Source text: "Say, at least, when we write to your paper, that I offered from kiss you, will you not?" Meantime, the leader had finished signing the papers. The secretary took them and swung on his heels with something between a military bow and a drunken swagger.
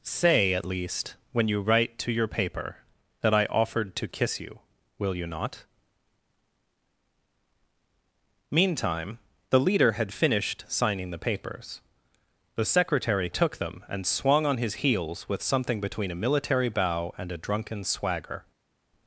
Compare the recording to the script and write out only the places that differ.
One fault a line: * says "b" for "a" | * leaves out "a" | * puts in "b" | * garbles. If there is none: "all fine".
* says "you" for "we"
* says "to" for "from"